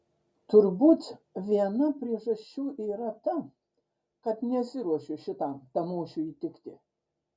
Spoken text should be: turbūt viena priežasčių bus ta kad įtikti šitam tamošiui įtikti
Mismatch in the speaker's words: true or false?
true